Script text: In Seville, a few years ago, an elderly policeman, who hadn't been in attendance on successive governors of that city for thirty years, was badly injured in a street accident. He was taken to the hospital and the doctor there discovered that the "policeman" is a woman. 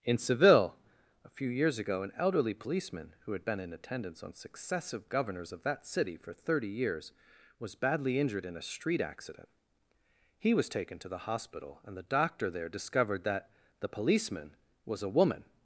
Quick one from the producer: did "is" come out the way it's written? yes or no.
no